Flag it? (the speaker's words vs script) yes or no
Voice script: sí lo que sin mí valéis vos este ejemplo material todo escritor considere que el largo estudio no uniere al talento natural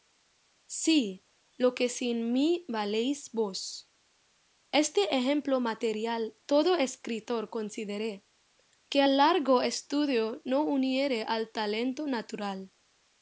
no